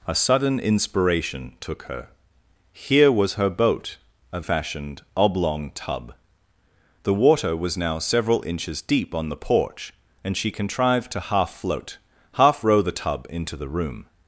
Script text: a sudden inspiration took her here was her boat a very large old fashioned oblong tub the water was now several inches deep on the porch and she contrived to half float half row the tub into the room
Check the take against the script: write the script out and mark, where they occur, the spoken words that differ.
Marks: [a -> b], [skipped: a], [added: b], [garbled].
a sudden inspiration took her here was her boat a [skipped: very large old] fashioned oblong tub the water was now several inches deep on the porch and she contrived to half float half row the tub into the room